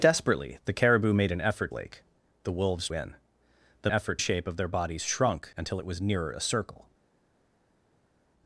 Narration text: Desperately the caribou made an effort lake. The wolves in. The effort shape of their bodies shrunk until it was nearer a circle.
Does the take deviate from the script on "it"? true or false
false